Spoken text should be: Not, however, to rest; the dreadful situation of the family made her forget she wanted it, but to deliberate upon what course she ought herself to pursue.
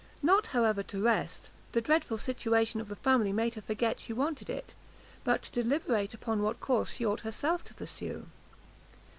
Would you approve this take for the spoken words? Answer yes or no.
yes